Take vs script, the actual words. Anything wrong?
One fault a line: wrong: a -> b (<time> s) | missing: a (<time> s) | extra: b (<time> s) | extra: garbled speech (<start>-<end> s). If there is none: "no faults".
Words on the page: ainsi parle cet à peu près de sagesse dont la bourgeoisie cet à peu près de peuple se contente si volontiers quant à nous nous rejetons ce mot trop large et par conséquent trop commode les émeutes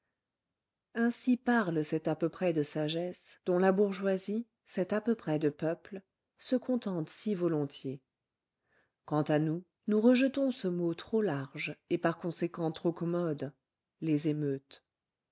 no faults